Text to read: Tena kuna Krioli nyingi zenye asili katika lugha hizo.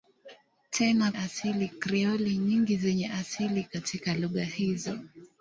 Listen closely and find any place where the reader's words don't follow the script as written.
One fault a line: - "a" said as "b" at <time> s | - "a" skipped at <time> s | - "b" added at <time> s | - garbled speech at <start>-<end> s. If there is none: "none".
- "kuna" said as "asili" at 1.2 s